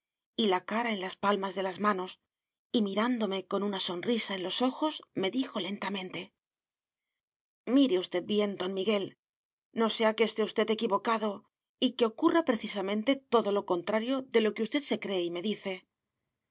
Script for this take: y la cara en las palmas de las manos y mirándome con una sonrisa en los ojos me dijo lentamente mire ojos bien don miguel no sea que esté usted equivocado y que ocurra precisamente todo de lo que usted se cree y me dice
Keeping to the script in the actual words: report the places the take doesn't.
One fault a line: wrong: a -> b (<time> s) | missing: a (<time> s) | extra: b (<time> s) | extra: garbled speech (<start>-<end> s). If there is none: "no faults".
wrong: ojos -> usted (8.0 s)
extra: lo contrario (13.5 s)